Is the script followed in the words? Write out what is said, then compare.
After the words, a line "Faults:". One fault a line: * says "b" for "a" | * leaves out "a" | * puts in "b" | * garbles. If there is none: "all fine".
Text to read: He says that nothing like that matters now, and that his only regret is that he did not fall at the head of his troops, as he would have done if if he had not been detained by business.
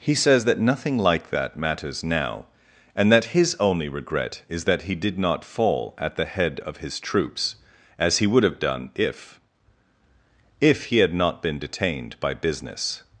He says that nothing like that matters now, and that his only regret is that he did not fall at the head of his troops, as he would have done if if he had not been detained by business.
Faults:
all fine